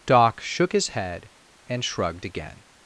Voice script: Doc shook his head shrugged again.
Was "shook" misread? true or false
false